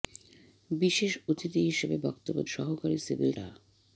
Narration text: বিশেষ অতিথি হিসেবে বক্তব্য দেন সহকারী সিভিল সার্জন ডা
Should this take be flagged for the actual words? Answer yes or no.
yes